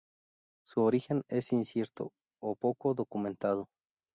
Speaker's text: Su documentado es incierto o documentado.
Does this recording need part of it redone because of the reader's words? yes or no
yes